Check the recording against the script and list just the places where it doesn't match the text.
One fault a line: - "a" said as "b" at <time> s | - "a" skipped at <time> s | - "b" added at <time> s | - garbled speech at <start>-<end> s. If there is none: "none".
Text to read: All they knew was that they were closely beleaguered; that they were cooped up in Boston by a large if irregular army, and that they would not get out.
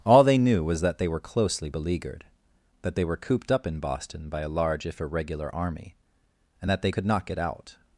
- "would" said as "could" at 6.9 s